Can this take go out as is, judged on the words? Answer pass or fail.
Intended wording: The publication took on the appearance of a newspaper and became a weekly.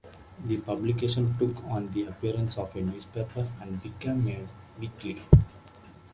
pass